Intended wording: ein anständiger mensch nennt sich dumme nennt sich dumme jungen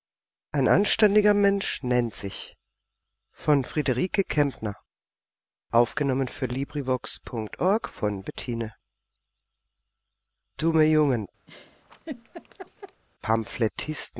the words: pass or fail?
fail